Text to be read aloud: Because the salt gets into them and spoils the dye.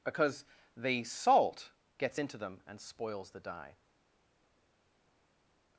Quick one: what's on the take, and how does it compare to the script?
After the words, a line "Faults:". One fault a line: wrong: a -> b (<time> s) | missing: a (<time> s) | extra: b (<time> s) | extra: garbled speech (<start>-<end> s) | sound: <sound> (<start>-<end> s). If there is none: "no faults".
Because the salt gets into them and spoils the dye.
Faults:
no faults